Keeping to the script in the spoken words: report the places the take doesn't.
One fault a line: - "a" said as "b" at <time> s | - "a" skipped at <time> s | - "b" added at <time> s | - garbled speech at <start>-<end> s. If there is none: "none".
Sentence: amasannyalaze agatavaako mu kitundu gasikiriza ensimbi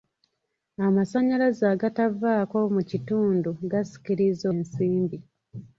none